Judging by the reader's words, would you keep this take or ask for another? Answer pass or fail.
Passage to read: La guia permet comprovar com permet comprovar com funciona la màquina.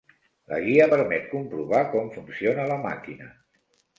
fail